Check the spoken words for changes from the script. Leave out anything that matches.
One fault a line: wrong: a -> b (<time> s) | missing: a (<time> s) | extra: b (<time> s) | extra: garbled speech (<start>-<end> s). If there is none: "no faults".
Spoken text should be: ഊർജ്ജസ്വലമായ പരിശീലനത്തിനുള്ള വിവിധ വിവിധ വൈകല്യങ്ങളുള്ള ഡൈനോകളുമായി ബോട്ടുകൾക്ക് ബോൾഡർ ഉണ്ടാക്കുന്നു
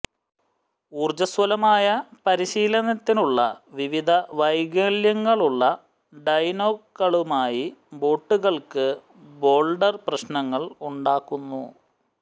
missing: വിവിധ (4.1 s)
extra: പ്രശ്നങ്ങൾ (10.1 s)